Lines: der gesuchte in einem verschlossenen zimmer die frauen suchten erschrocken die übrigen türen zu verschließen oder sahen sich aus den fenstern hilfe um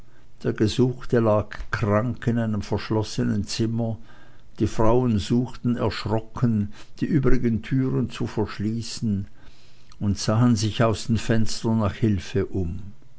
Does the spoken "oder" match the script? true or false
false